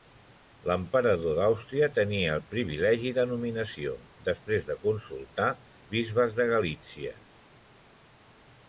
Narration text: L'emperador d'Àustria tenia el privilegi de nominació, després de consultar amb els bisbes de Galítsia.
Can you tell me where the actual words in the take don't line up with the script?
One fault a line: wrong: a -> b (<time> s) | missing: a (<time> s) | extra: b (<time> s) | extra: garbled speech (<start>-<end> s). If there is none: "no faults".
missing: amb els (5.5 s)